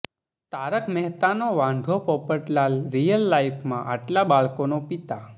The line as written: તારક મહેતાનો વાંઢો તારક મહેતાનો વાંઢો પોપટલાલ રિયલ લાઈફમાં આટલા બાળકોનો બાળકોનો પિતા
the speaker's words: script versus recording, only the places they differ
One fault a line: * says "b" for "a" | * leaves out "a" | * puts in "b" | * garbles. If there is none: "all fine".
* leaves out "તારક મહેતાનો વાંઢો"
* leaves out "બાળકોનો"